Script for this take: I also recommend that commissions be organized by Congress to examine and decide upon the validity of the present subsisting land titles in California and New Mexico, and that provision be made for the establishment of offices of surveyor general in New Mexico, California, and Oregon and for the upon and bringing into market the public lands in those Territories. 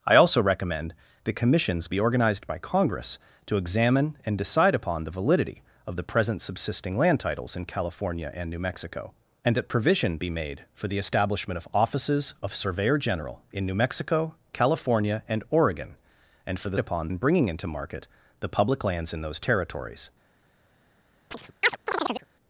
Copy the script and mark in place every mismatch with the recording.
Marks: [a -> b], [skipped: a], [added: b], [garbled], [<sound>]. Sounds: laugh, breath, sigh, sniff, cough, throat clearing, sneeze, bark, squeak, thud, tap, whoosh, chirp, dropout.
I also recommend that commissions be organized by Congress to examine and decide upon the validity of the present subsisting land titles in California and New Mexico, and that provision be made for the establishment of offices of surveyor general in New Mexico, California, and Oregon and for the upon and bringing into market the public lands in those Territories. [chirp]